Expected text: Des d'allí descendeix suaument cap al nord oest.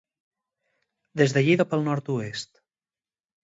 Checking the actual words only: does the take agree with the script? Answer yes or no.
no